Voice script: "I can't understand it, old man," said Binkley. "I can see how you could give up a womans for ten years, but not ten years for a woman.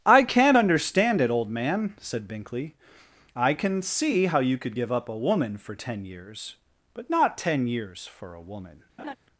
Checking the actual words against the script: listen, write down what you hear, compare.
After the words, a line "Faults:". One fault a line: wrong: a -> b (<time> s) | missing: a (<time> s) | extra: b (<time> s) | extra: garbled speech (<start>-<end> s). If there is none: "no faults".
"I can't understand it, old man," said Binkley. "I can see how you could give up a woman for ten years, but not ten years for a woman.
Faults:
wrong: womans -> woman (5.2 s)